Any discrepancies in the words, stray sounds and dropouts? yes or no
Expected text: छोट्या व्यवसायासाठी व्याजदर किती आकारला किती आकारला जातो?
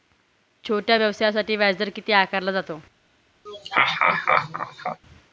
yes